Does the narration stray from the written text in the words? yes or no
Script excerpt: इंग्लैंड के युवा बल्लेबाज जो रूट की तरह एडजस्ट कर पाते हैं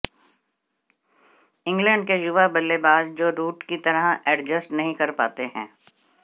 yes